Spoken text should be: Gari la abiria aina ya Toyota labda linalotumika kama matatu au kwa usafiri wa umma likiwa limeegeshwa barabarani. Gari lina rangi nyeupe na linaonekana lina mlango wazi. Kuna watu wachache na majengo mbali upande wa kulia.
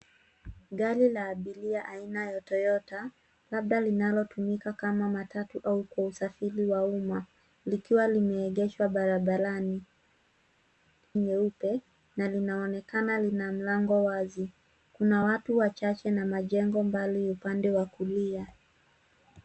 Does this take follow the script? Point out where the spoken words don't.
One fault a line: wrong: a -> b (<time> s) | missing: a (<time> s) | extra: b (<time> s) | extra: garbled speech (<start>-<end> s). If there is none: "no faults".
missing: Gari lina rangi (9.8 s)